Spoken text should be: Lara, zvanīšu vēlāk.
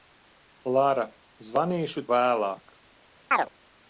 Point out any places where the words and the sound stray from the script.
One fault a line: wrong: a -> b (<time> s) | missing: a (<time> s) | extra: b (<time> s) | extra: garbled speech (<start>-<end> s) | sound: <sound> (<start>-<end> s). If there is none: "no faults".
sound: chirp (3.3-3.5 s)